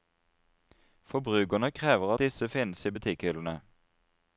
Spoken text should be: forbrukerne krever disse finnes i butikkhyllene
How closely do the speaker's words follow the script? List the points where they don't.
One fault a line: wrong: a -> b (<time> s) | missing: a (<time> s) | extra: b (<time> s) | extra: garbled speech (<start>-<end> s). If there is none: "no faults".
no faults